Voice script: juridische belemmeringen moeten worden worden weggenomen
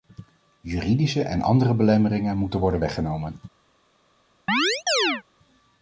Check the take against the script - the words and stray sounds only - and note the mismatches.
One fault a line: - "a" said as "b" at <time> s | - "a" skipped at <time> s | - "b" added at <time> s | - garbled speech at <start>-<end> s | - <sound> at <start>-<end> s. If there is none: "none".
- "en andere" added at 1.2 s
- "worden" skipped at 2.8 s
- chirp at 4.5-5.2 s